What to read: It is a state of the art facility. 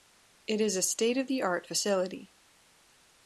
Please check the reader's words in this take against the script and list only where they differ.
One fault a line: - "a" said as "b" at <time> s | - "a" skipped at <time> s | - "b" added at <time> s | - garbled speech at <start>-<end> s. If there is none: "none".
none